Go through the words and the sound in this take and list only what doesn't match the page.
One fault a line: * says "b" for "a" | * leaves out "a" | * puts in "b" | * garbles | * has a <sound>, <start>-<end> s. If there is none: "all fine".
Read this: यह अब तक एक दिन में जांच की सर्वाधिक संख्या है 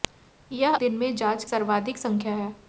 * leaves out "अब तक एक"
* leaves out "की"